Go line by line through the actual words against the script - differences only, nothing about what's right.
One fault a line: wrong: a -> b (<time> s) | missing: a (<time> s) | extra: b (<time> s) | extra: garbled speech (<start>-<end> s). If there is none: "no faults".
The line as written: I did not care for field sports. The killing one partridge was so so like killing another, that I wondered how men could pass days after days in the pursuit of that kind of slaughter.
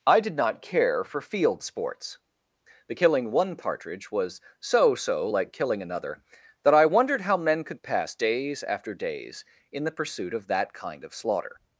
no faults